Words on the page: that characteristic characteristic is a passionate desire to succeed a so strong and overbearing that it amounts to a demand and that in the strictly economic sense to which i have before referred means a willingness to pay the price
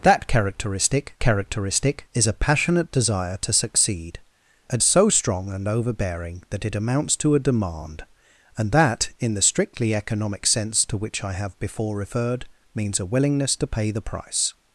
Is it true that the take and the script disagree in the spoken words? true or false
false